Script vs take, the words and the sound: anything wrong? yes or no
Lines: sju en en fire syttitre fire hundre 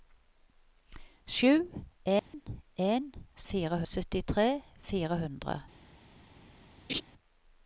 yes